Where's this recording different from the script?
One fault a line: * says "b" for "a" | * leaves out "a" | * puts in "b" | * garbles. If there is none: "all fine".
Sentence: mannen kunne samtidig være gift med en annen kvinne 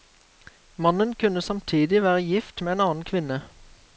all fine